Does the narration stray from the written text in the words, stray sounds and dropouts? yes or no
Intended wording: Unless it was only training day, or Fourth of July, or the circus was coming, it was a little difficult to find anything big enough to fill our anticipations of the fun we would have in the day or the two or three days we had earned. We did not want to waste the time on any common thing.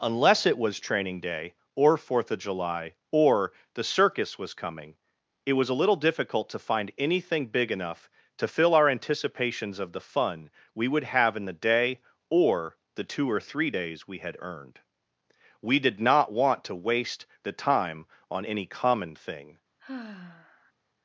yes